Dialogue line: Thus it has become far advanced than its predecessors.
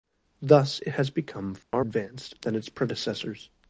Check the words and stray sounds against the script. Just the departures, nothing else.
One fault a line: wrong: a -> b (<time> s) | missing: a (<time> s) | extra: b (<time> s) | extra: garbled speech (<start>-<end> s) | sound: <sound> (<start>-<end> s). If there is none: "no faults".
sound: dropout (1.6-1.7 s)